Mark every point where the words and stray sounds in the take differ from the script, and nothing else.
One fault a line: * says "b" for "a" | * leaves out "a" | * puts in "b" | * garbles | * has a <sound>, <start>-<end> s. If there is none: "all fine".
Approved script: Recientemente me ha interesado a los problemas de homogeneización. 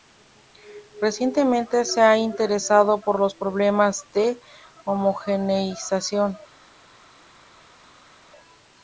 * says "se" for "me"
* says "por" for "a"